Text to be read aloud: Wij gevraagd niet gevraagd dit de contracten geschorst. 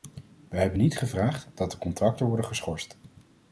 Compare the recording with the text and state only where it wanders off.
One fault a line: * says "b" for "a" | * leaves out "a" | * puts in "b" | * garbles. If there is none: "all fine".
* says "hebben" for "gevraagd"
* says "dat" for "dit"
* puts in "worden"